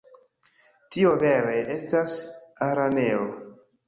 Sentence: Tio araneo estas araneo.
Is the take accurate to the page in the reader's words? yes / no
no